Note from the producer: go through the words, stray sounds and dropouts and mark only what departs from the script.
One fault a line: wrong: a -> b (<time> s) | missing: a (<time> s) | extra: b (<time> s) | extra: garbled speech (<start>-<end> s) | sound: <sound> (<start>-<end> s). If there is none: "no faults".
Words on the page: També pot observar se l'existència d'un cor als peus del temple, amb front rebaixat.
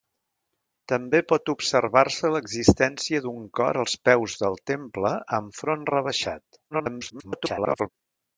extra: garbled speech (6.7-7.9 s)